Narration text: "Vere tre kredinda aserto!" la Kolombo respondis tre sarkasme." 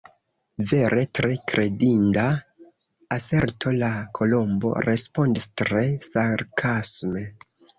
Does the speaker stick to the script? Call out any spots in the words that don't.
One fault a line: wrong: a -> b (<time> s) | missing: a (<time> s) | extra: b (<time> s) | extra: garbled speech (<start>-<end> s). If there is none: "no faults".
no faults